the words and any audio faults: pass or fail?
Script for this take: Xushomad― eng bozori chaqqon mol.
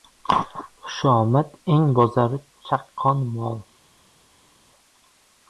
pass